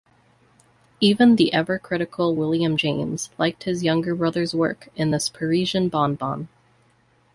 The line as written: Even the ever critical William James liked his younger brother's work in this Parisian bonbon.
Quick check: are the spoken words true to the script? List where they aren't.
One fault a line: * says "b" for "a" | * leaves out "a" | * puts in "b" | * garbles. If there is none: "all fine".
all fine